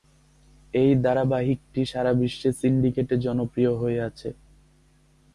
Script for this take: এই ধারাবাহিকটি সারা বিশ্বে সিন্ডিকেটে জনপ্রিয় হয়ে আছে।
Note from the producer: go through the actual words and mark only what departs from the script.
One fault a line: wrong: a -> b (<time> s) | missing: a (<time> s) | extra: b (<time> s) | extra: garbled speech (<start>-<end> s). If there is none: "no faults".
no faults